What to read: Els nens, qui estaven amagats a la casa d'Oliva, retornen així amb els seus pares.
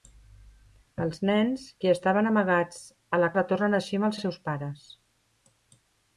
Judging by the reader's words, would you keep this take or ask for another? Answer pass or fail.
fail